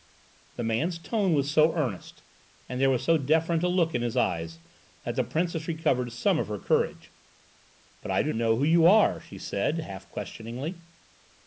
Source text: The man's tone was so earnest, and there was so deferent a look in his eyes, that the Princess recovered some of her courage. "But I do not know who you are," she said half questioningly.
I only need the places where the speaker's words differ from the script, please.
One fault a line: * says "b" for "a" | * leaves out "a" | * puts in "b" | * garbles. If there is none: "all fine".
* leaves out "not"